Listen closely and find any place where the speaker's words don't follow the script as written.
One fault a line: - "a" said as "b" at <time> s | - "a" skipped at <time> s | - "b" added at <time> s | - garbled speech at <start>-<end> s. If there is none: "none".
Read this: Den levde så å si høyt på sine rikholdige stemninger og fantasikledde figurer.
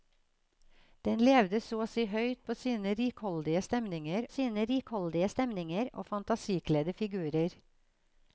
- "sine rikholdige stemninger" added at 4.3 s